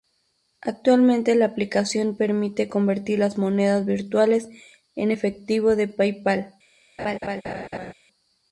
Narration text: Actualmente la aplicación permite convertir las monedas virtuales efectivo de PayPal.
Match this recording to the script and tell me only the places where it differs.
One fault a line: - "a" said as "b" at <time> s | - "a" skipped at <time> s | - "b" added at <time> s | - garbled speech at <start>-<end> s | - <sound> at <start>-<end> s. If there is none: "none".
- "en" added at 5.0 s
- laugh at 7.0-7.9 s